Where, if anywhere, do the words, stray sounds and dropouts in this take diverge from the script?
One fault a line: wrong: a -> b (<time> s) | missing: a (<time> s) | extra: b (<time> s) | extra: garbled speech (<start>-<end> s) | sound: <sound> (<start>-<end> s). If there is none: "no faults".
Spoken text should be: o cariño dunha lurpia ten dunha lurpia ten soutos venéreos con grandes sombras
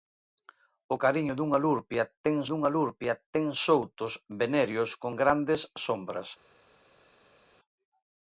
no faults